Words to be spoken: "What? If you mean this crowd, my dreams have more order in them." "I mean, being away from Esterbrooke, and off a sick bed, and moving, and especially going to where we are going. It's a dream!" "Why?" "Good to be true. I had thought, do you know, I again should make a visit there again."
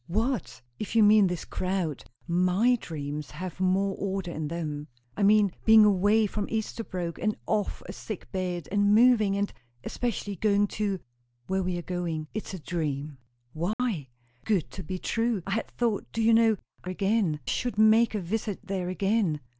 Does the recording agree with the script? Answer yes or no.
yes